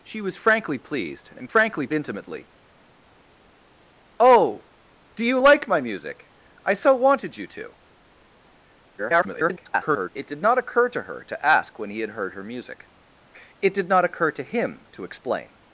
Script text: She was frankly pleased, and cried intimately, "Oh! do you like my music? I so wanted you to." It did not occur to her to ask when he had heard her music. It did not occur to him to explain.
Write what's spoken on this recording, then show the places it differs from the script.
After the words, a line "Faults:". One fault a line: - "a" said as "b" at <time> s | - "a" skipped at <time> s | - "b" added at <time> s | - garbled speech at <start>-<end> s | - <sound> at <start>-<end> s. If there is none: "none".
She was frankly pleased, and frankly intimately, "Oh! do you like my music? I so wanted you to." [garbled] It did not occur to her to ask when he had heard her music. It did not occur to him to explain.
Faults:
- "cried" said as "frankly" at 1.5 s
- garbled speech at 9.0-10.1 s